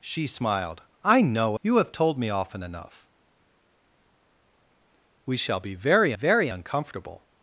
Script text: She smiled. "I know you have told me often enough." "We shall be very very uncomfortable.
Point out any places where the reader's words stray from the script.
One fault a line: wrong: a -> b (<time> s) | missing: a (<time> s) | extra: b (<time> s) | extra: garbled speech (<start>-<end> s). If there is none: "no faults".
no faults